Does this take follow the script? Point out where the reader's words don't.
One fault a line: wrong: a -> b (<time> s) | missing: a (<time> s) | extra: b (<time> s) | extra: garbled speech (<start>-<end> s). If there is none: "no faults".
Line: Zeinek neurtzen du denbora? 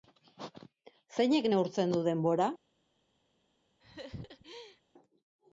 no faults